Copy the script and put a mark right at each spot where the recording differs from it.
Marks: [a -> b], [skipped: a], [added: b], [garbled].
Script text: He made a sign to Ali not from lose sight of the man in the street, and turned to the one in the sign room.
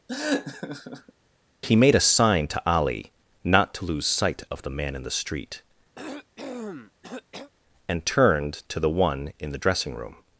He made a sign to Ali not [from -> to] lose sight of the man in the street, and turned to the one in the [sign -> dressing] room.